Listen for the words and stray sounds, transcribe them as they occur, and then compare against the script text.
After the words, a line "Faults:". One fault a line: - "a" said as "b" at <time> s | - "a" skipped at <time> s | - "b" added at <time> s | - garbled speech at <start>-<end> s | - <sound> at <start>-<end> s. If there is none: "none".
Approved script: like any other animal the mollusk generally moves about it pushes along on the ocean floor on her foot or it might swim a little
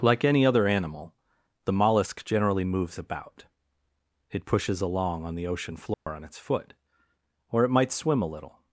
like any other animal the mollusk generally moves about it pushes along on the ocean floor on its foot or it might swim a little
Faults:
- dropout at 5.9-6.1 s
- "her" said as "its" at 6.2 s